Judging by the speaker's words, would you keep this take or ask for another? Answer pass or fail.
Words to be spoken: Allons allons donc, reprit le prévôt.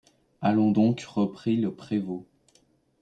fail